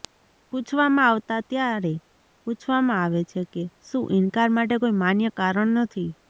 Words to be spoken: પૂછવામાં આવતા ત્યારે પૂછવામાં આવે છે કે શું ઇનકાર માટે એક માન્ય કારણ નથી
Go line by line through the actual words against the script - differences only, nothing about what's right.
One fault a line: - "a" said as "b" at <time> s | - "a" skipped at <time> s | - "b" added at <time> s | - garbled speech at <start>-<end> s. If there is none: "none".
- "એક" said as "કોઈ" at 4.8 s